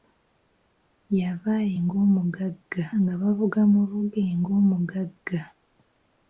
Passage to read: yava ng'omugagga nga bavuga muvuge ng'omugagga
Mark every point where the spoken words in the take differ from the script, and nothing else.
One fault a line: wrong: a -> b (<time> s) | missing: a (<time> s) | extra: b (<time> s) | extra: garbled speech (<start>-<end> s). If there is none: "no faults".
no faults